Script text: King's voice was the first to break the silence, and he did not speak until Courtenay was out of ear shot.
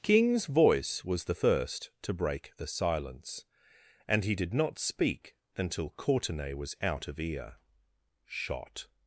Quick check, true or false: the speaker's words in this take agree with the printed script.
true